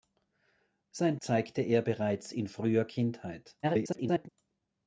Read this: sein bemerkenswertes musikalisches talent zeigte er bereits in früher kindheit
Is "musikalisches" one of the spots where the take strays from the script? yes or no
yes